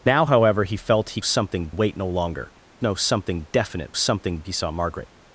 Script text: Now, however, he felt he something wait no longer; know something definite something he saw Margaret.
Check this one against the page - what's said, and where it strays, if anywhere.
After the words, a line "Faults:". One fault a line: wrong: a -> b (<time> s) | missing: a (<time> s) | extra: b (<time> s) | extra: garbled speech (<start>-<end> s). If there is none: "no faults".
Now, however, he felt he something wait no longer; know something definite something he saw Margaret.
Faults:
no faults